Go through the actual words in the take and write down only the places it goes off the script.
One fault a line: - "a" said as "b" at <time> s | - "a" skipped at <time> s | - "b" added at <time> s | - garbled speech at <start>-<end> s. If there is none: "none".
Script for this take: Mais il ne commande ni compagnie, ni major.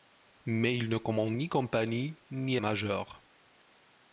none